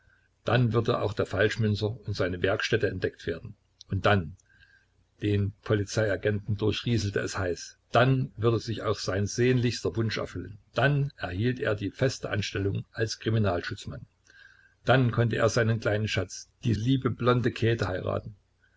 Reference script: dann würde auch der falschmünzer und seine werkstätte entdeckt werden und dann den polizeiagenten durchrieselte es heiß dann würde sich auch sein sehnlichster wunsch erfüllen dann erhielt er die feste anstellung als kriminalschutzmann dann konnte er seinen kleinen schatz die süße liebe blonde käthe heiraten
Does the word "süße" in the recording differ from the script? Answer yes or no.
yes